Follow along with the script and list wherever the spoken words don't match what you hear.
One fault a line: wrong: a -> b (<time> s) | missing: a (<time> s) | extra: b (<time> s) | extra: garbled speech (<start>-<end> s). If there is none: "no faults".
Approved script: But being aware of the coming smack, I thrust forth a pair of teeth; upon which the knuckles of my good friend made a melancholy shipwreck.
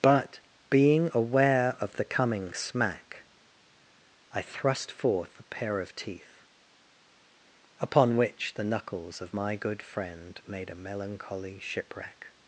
no faults